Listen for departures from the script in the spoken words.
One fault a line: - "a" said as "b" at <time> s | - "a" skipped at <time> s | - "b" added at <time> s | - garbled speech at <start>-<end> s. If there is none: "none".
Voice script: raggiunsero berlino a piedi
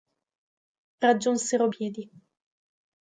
- "berlino a" skipped at 1.7 s